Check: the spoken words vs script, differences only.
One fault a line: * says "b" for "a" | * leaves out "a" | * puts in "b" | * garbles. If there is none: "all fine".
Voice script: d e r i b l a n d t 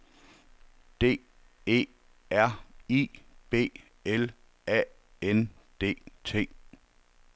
all fine